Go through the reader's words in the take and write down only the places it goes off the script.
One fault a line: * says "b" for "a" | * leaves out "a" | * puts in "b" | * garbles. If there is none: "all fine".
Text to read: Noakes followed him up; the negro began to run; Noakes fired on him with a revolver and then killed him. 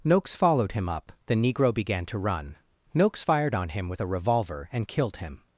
* leaves out "then"